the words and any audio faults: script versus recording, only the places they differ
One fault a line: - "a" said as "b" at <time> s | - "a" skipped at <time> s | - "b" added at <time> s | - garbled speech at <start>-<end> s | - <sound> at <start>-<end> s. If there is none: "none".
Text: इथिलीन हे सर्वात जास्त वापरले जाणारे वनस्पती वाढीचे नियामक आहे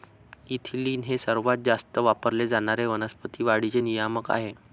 none